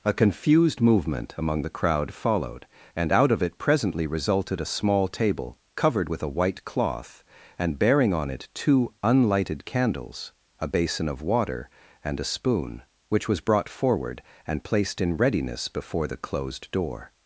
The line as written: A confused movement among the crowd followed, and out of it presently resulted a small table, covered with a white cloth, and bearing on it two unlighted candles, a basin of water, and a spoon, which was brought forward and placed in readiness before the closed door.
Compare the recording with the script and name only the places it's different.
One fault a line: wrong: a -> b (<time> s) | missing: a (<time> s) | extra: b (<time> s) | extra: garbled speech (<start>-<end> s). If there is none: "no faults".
no faults